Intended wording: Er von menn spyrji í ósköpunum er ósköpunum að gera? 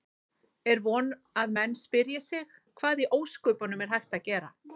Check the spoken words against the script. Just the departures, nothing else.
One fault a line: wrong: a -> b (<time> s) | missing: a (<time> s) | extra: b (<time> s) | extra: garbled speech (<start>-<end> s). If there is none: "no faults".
extra: að (1.4 s)
extra: sig Hvað (2.3 s)
wrong: ósköpunum -> hægt (4.0 s)